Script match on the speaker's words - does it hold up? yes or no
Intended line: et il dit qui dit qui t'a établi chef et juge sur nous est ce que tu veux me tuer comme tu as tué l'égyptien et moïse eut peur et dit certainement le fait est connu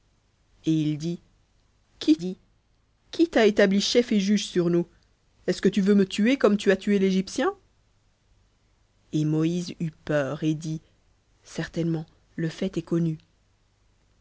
yes